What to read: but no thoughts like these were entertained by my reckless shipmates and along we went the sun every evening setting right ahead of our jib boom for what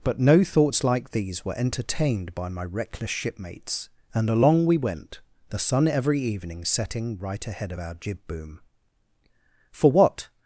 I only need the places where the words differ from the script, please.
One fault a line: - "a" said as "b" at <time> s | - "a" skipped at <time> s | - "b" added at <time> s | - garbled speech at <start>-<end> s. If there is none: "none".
none